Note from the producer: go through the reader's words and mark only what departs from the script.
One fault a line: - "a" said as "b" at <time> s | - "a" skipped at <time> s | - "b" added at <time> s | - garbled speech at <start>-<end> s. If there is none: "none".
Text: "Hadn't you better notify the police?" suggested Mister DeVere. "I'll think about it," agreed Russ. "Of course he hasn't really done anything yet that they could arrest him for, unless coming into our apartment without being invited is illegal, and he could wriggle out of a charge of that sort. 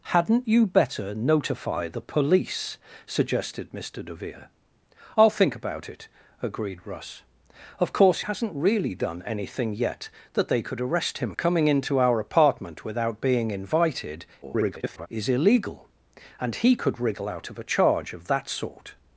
- "he" skipped at 8.2 s
- "for unless" skipped at 11.3 s
- garbled speech at 14.4-15.1 s